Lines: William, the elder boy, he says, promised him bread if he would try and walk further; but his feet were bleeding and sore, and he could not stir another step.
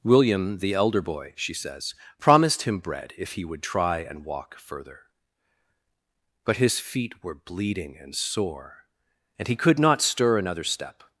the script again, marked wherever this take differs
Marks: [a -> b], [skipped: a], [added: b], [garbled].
William, the elder boy, [he -> she] says, promised him bread if he would try and walk further; but his feet were bleeding and sore, and he could not stir another step.